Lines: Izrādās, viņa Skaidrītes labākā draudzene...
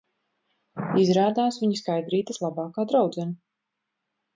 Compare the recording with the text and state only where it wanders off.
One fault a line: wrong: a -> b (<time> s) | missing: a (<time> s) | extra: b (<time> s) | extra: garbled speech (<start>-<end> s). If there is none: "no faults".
no faults